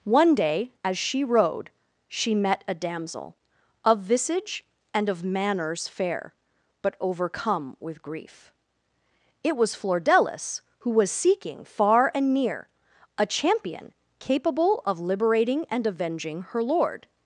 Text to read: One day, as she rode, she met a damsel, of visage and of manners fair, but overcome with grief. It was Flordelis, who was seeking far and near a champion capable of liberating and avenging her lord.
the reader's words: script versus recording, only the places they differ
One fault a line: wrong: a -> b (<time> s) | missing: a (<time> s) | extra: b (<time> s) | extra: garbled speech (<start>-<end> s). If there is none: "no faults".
no faults